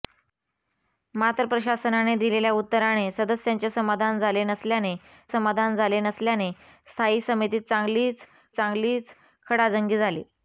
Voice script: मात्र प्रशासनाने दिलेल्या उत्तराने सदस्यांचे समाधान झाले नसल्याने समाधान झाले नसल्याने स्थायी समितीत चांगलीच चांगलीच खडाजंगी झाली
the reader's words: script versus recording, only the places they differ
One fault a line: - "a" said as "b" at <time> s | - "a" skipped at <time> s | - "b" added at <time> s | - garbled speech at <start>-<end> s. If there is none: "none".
none